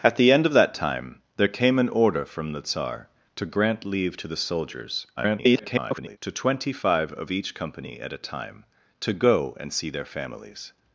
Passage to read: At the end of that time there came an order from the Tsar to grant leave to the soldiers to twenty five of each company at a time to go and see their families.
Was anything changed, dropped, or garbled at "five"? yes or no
no